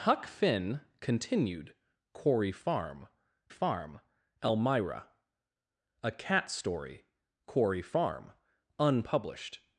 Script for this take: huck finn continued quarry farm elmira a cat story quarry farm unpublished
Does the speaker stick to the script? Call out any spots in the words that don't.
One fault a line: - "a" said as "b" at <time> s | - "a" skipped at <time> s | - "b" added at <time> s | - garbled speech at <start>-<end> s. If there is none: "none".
- "farm" added at 3.5 s